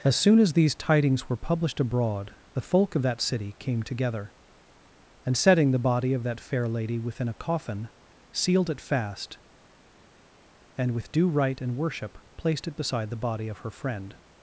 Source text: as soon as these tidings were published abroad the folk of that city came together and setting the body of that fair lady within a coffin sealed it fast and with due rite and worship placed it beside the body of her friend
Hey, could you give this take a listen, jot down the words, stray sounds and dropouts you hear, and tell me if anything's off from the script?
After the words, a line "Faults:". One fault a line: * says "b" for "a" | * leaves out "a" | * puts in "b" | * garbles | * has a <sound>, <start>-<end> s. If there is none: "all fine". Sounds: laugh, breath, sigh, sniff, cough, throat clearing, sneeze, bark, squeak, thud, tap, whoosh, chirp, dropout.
as soon as these tidings were published abroad the folk of that city came together and setting the body of that fair lady within a coffin sealed it fast and with due rite and worship placed it beside the body of her friend
Faults:
all fine